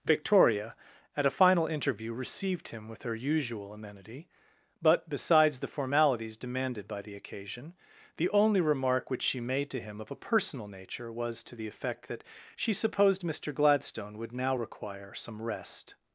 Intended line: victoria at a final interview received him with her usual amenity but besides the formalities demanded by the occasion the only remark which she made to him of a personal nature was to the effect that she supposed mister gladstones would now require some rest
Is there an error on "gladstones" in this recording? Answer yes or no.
yes